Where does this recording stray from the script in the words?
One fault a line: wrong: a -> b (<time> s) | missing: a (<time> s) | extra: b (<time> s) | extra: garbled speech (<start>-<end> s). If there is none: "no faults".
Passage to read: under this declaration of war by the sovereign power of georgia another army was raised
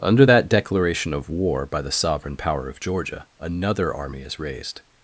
wrong: this -> that (0.2 s)
wrong: was -> is (4.2 s)